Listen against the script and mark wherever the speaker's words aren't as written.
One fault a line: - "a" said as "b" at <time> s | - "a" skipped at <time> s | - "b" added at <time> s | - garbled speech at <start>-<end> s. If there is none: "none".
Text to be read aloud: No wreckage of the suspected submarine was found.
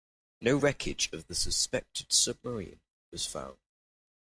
none